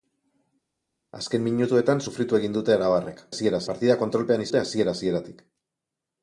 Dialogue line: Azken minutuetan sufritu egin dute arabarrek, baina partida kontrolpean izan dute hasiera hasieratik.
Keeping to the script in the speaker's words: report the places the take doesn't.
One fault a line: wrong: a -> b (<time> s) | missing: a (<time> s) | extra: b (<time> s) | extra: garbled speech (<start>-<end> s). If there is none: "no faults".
wrong: baina -> hasiera (3.3 s)
missing: izan (4.5 s)